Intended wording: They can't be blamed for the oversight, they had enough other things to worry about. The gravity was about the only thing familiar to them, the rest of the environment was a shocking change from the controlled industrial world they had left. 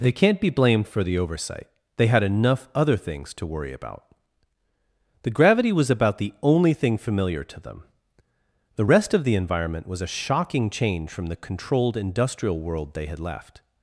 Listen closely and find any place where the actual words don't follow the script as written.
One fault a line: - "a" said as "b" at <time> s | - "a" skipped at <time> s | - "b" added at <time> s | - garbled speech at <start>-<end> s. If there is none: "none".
none